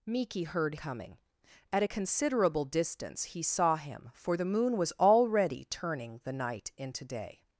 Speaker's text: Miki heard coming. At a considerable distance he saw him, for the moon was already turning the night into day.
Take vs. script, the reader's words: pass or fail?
pass